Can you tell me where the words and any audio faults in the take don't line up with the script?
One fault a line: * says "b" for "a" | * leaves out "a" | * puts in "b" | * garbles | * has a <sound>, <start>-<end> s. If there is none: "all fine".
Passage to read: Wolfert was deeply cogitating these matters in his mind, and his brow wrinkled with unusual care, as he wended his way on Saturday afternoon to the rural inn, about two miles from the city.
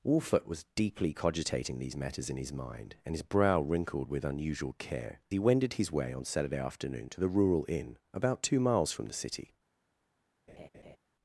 * leaves out "as"
* has a laugh, 10.5-11.0 s